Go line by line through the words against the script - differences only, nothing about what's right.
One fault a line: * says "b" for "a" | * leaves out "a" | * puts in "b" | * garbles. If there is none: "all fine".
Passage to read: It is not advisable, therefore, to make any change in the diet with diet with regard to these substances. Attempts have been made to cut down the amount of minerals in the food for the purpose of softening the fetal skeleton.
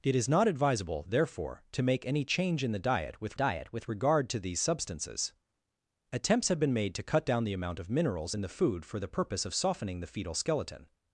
all fine